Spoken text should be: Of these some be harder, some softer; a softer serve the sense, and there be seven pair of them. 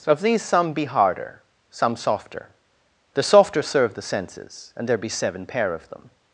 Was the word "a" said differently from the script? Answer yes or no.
yes